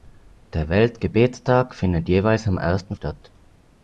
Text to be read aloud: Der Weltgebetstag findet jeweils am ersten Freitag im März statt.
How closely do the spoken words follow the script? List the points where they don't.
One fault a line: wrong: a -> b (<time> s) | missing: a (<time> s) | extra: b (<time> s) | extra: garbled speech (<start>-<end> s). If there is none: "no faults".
missing: Freitag im März (3.0 s)